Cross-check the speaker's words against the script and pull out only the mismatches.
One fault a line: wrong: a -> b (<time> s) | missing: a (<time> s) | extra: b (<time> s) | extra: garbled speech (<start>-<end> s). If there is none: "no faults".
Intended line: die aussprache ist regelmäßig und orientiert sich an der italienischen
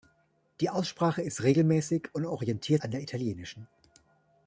missing: sich (2.8 s)